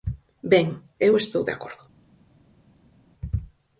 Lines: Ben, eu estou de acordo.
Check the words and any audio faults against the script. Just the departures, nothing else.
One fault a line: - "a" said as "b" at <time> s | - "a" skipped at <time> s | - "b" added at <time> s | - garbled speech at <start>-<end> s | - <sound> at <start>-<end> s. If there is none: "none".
none